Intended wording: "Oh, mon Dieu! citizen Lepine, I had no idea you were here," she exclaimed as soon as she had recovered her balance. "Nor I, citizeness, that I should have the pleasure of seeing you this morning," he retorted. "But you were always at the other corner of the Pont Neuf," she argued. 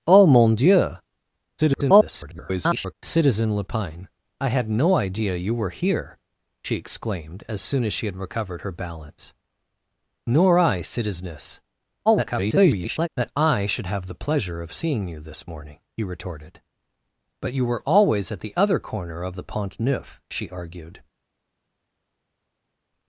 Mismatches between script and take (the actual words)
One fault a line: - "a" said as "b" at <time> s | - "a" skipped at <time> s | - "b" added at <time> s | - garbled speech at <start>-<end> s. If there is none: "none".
- garbled speech at 1.6-2.9 s
- garbled speech at 12.1-13.1 s